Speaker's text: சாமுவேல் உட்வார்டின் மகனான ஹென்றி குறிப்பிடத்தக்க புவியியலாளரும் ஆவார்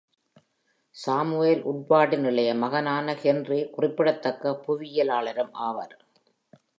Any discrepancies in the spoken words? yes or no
yes